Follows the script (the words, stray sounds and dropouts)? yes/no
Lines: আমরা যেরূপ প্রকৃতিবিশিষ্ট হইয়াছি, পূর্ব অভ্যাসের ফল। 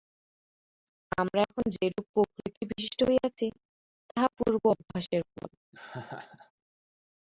no